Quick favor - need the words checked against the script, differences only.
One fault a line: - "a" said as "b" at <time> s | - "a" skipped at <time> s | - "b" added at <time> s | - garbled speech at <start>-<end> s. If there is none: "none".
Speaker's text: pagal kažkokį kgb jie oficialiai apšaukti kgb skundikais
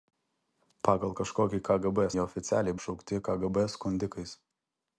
none